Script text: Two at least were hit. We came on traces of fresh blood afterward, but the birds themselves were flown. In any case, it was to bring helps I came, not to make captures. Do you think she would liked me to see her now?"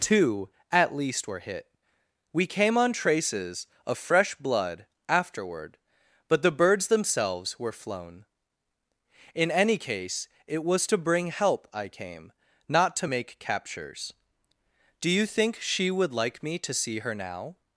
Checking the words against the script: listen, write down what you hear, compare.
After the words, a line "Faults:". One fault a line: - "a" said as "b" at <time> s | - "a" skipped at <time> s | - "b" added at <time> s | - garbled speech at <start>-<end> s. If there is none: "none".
Two at least were hit. We came on traces of fresh blood afterward, but the birds themselves were flown. In any case, it was to bring help I came, not to make captures. Do you think she would like me to see her now?"
Faults:
- "helps" said as "help" at 11.3 s
- "liked" said as "like" at 16.1 s